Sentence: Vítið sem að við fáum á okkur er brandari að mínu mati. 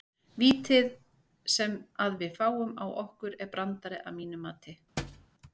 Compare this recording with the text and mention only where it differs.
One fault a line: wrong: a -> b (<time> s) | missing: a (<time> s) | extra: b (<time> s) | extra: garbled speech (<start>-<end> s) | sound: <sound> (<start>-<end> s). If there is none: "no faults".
sound: thud (5.0-5.3 s)